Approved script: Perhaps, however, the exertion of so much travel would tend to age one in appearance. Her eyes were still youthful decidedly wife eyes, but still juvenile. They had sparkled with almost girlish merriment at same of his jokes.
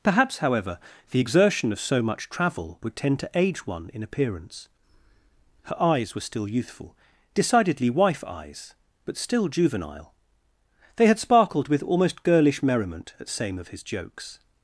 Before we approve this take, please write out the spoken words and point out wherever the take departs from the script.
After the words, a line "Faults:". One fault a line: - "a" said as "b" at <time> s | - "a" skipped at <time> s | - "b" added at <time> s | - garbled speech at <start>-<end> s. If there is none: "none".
Perhaps, however, the exertion of so much travel would tend to age one in appearance. Her eyes were still youthful decidedly wife eyes, but still juvenile. They had sparkled with almost girlish merriment at same of his jokes.
Faults:
none